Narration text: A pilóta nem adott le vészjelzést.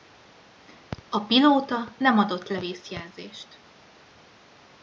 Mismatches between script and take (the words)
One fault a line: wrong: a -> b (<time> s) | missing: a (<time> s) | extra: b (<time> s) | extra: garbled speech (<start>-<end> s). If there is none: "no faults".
no faults